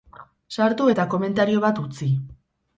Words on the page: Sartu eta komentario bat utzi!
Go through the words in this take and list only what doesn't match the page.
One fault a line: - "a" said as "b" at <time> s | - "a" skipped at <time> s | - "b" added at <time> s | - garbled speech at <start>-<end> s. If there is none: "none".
none